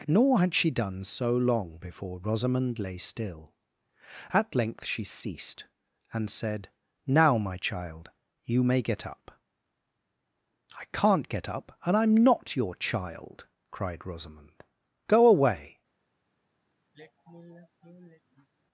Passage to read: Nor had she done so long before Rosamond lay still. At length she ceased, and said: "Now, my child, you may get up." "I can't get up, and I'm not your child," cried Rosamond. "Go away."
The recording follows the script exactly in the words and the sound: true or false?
false